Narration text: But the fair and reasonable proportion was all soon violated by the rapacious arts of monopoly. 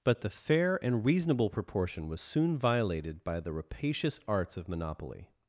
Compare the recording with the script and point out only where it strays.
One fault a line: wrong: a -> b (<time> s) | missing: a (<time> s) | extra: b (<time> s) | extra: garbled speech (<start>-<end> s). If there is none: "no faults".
missing: all (2.2 s)